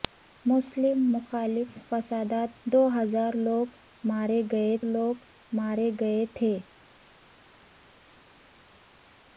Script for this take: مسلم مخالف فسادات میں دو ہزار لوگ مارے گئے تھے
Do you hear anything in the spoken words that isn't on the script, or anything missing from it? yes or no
yes